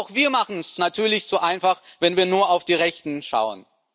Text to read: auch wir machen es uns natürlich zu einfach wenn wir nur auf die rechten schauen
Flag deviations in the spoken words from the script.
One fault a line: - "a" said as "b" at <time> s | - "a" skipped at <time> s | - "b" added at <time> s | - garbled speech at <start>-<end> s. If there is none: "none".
- "uns" skipped at 0.8 s